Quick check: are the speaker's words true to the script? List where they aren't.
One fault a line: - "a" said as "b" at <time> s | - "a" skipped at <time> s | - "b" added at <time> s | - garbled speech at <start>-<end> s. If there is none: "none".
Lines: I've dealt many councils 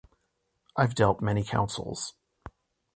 none